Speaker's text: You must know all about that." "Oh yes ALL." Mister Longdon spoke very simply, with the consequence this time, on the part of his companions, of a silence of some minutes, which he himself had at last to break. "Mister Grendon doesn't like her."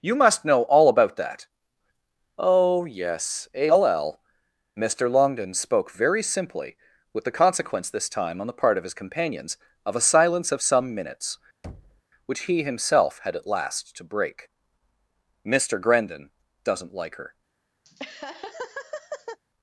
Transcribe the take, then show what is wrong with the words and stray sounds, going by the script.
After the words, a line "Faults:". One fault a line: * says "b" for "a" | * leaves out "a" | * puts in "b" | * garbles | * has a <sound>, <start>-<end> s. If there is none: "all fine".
You must know all about that." "Oh yes ALL." Mister Longdon spoke very simply, with the consequence this time, on the part of his companions, of a silence of some minutes, which he himself had at last to break. "Mister Grendon doesn't like her."
Faults:
* has a thud, 11.6-12.0 s
* has a laugh, 17.8-19.4 s